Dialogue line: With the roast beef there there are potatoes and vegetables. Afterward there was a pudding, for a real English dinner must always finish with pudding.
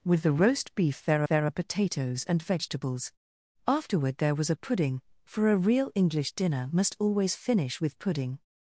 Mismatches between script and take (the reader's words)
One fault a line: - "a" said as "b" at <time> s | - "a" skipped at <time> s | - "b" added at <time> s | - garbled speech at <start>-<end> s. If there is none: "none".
none